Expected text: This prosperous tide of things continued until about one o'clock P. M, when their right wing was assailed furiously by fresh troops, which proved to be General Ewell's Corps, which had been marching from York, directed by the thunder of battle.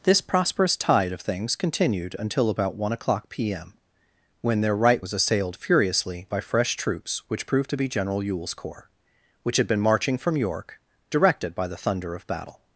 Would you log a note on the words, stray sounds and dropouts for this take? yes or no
yes